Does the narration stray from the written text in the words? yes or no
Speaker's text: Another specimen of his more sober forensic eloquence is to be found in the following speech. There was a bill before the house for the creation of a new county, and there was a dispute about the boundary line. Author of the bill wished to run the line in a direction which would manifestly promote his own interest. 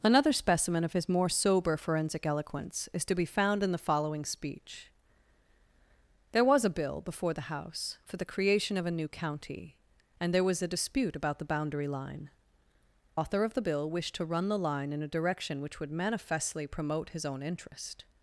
no